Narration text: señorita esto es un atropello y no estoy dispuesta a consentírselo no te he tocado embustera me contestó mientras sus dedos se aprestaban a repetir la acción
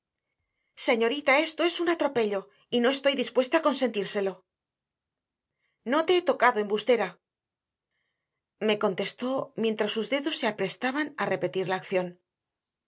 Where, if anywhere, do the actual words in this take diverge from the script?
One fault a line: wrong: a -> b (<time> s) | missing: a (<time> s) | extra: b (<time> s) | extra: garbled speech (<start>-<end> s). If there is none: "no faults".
no faults